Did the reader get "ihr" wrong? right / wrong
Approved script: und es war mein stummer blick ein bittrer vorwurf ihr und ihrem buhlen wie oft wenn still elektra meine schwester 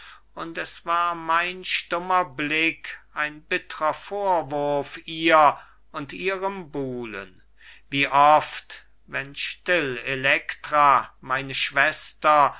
right